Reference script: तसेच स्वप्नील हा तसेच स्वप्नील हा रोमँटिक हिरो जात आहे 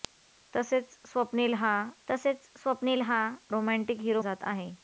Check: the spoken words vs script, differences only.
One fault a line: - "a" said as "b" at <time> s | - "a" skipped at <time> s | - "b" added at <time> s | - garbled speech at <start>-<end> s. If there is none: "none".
none